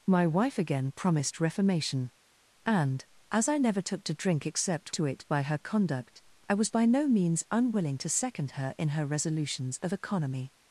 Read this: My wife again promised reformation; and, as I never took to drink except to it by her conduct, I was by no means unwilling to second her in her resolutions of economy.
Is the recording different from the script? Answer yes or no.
no